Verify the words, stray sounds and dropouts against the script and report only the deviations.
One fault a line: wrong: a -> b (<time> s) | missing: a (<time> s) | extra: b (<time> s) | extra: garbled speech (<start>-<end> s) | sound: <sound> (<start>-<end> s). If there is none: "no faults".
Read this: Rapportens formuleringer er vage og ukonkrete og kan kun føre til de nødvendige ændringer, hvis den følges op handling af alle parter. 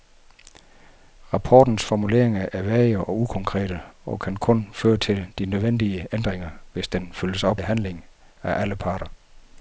no faults